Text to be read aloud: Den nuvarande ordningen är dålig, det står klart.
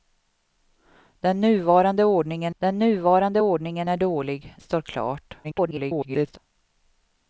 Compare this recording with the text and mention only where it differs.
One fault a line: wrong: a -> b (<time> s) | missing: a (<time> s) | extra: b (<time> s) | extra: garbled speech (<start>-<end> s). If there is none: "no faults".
extra: den nuvarande ordningen (2.6 s)
missing: det (4.5 s)
extra: garbled speech (5.4-6.4 s)